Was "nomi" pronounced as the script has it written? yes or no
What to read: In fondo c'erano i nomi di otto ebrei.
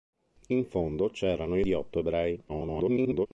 no